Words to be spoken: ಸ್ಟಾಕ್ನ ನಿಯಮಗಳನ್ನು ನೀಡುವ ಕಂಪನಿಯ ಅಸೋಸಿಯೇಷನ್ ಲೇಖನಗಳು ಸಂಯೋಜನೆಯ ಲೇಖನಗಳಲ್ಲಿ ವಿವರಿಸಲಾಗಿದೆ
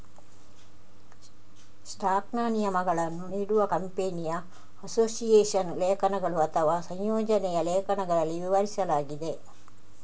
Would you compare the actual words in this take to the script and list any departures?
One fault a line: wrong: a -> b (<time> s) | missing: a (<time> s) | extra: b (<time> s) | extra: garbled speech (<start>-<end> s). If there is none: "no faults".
extra: ಅಥವಾ (6.5 s)